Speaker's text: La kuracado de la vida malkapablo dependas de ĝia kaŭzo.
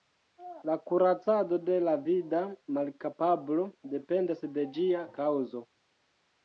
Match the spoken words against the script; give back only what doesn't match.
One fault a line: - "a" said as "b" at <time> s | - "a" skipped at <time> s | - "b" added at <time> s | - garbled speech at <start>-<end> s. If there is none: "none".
none